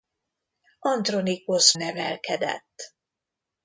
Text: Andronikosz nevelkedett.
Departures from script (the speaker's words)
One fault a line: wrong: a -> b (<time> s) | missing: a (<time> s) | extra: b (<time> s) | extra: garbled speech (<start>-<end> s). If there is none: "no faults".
no faults